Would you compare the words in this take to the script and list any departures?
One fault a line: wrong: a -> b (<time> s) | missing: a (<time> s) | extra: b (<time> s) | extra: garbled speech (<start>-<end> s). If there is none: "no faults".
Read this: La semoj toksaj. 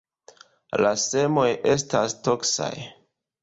extra: estas (1.8 s)